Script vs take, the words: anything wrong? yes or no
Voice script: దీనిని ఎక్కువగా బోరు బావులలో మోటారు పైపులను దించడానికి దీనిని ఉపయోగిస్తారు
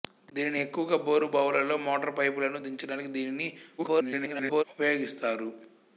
yes